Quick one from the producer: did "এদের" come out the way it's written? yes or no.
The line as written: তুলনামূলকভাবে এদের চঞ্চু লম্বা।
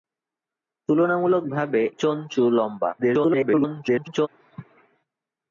no